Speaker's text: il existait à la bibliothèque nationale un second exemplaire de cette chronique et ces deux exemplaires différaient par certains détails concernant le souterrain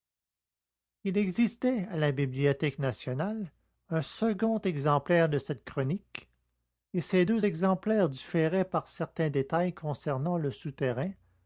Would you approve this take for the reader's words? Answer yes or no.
yes